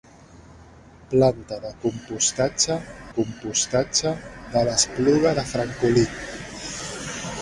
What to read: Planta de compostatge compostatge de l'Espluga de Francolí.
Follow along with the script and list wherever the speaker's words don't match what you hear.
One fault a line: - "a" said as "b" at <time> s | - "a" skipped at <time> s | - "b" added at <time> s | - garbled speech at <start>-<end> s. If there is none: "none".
none